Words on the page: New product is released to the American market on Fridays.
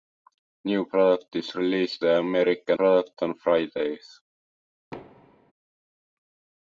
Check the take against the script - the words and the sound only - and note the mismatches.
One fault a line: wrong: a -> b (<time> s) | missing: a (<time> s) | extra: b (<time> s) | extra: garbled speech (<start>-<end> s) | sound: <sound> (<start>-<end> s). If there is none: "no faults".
missing: to (2.0 s)
wrong: market -> product (2.7 s)
sound: thud (4.9-5.5 s)